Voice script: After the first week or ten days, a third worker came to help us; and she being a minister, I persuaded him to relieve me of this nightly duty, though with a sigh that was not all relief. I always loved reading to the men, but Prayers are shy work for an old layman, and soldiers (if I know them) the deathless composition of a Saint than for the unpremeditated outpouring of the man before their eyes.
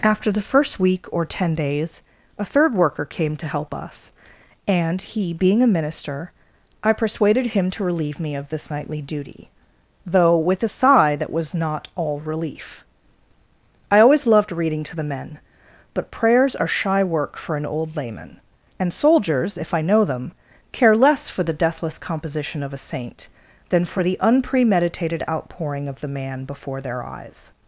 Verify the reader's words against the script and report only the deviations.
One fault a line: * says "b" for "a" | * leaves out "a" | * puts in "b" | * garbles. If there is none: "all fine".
* says "he" for "she"
* puts in "care less for"